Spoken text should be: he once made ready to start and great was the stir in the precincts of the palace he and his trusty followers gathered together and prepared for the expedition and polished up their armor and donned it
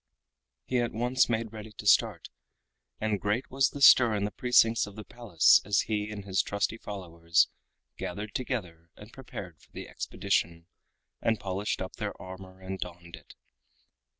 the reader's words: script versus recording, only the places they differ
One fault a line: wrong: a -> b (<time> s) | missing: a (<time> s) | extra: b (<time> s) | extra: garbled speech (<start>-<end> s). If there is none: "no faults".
extra: at (0.8 s)
extra: as (5.6 s)